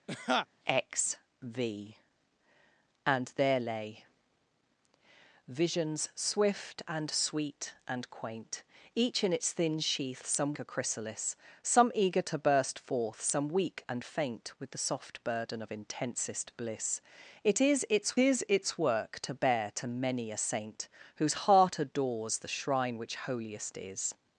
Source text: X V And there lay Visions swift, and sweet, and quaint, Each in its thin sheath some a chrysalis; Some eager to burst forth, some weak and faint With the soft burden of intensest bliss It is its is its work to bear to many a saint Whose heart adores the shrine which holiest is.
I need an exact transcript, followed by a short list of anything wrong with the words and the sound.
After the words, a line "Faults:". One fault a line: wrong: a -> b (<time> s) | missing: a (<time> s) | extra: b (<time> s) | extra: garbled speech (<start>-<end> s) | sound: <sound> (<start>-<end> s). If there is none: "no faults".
X V And there lay Visions swift, and sweet, and quaint, Each in its thin sheath some a chrysalis; Some eager to burst forth, some weak and faint With the soft burden of intensest bliss It is its is its work to bear to many a saint Whose heart adores the shrine which holiest is.
Faults:
sound: laugh (0.1-0.5 s)